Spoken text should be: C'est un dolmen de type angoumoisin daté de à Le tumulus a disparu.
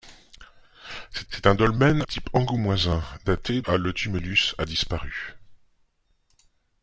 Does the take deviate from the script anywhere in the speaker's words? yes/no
yes